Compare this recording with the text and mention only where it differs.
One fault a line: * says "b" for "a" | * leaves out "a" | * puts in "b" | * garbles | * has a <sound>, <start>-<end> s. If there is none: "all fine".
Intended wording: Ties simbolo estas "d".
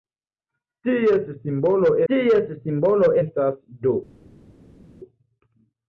* puts in "ties simbolo"